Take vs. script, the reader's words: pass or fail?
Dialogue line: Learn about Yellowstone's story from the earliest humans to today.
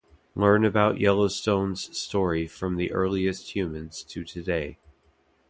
pass